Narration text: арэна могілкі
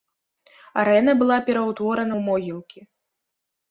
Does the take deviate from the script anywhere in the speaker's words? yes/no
yes